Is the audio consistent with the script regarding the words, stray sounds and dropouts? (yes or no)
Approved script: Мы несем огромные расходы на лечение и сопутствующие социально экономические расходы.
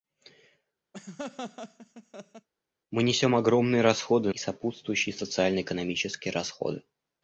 no